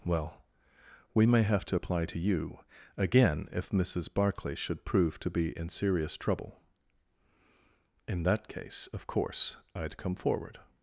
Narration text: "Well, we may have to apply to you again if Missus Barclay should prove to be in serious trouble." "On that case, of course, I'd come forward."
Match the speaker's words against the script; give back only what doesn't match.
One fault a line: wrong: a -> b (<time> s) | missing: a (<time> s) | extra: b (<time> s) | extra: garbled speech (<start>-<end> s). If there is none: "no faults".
wrong: On -> In (8.1 s)